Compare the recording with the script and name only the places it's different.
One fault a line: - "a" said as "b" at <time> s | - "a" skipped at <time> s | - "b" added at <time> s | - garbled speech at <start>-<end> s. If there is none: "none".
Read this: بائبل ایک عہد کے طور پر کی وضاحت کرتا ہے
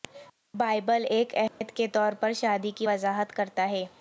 - "شادی" added at 2.3 s